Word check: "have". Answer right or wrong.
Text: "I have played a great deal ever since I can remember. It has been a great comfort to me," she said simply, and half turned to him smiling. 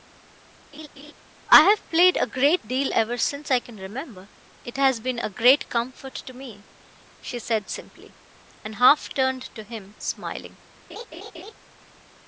right